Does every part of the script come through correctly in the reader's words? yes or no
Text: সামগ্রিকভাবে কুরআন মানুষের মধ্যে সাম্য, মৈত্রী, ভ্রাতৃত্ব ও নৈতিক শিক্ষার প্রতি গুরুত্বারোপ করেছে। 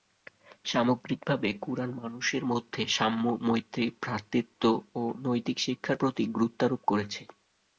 yes